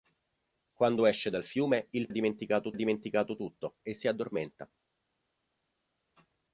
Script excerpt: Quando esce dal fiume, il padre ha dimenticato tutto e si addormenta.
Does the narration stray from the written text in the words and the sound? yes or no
yes